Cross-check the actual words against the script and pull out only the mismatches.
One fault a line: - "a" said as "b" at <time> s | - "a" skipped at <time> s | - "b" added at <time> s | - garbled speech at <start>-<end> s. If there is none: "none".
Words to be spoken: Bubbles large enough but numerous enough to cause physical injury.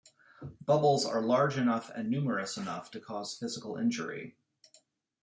- "are" added at 1.1 s
- "but" said as "and" at 1.9 s